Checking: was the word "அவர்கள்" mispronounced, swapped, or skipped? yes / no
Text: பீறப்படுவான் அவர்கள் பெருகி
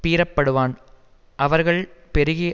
no